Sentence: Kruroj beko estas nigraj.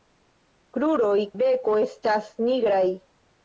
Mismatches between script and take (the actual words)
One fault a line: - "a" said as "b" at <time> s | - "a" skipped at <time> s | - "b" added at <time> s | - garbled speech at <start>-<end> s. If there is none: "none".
none